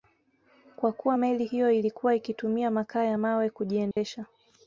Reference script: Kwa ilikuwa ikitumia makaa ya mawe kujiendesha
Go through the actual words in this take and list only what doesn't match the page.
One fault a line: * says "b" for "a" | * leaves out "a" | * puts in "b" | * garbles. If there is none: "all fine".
* puts in "kuwa meli hiyo"